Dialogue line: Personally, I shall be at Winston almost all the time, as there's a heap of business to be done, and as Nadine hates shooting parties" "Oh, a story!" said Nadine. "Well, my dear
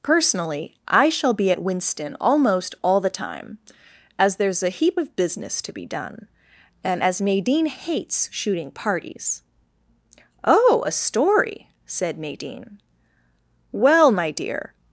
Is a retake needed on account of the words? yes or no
no